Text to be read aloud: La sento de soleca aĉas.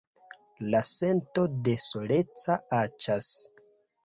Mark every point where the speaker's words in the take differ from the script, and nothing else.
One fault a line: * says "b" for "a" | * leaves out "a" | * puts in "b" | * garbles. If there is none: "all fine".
all fine